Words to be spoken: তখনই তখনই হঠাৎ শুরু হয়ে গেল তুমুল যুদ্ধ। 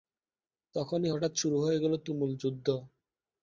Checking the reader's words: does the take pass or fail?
fail